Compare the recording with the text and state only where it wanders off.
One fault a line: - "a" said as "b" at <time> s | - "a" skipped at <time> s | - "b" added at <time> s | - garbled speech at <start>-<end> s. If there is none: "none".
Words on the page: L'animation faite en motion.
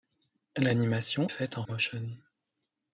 none